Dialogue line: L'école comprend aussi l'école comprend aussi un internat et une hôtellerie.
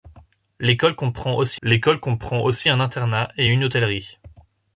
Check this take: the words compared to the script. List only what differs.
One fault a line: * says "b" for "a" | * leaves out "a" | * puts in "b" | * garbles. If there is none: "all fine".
all fine